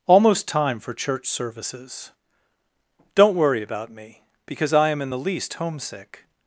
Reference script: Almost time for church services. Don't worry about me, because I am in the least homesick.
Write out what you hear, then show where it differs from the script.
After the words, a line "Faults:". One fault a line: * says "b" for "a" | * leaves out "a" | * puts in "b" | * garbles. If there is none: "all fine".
Almost time for church services. Don't worry about me, because I am in the least homesick.
Faults:
all fine